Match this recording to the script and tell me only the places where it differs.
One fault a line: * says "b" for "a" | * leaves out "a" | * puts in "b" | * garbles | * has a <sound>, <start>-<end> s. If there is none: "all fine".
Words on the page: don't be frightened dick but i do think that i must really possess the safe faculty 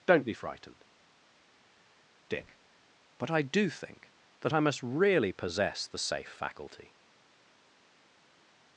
all fine